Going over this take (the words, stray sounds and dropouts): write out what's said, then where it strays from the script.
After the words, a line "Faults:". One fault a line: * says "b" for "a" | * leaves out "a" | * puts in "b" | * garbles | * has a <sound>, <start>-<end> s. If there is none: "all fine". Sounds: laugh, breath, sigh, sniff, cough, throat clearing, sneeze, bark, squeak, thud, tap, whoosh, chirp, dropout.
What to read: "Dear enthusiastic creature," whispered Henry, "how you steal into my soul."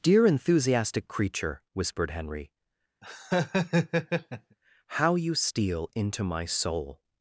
"Dear enthusiastic creature," whispered Henry, "how you steal into my soul."
Faults:
* has a laugh, 3.0-4.6 s